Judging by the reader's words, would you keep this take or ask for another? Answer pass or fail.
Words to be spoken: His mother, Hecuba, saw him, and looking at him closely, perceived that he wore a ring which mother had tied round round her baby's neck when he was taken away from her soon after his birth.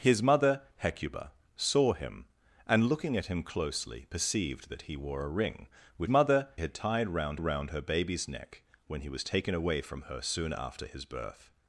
pass